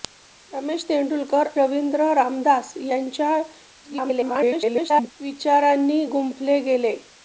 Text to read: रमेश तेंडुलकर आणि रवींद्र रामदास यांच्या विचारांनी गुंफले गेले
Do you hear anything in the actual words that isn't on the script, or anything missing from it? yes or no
yes